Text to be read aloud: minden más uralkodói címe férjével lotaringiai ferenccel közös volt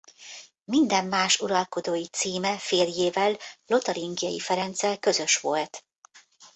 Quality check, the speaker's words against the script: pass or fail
pass